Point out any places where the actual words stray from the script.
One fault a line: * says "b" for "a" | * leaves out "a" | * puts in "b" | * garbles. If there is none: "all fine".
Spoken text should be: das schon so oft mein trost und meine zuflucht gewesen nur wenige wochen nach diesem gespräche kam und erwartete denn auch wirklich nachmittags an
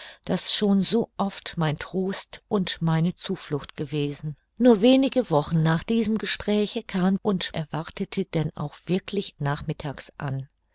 all fine